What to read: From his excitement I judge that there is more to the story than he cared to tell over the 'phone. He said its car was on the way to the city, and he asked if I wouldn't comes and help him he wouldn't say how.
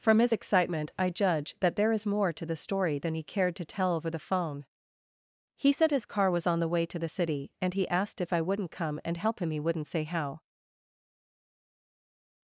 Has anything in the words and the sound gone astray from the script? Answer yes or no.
yes